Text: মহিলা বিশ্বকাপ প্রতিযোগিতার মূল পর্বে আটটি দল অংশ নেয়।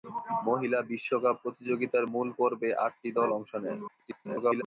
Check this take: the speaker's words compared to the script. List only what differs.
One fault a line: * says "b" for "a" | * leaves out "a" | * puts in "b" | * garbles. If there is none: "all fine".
* garbles